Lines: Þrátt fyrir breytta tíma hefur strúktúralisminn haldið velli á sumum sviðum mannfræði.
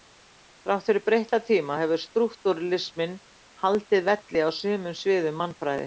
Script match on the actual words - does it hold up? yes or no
yes